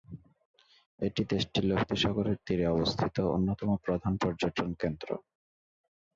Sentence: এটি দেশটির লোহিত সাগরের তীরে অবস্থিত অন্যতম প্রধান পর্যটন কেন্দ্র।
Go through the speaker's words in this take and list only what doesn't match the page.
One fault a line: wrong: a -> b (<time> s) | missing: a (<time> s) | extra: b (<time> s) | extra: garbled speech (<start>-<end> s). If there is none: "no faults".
no faults